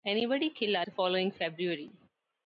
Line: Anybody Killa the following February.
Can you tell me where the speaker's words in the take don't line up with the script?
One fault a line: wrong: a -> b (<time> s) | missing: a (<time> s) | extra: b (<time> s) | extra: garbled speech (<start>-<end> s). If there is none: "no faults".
no faults